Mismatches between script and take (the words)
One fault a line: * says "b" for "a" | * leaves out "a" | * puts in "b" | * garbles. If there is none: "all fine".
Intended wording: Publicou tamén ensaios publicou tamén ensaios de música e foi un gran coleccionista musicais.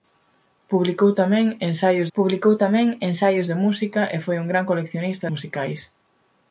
all fine